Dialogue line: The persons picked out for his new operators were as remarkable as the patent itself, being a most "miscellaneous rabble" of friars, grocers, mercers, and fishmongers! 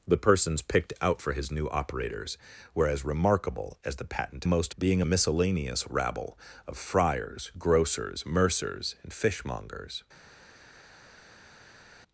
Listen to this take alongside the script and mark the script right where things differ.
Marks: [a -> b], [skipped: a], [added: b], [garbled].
The persons picked out for his new operators were as remarkable as the patent [itself, -> most] being a [skipped: most] "miscellaneous rabble" of friars, grocers, mercers, and fishmongers!